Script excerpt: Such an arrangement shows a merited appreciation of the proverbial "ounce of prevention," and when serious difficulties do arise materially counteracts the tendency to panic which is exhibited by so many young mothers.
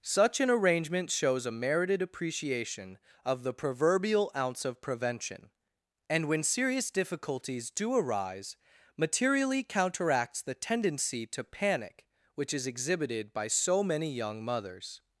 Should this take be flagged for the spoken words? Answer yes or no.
no